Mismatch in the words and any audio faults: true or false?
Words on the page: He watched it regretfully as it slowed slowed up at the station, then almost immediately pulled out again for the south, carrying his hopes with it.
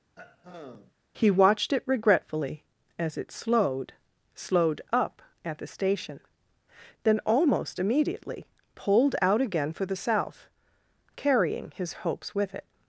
true